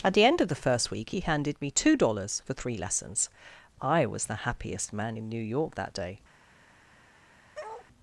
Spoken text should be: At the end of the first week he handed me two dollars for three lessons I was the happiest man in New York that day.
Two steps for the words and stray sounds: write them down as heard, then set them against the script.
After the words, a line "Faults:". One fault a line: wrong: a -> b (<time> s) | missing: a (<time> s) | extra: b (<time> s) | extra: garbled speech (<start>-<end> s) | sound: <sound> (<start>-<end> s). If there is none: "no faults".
At the end of the first week he handed me two dollars for three lessons I was the happiest man in New York that day.
Faults:
sound: bark (7.5-7.9 s)